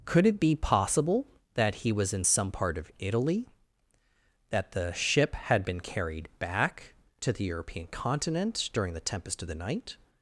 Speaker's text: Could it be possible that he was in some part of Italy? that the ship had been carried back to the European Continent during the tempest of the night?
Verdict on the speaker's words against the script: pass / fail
pass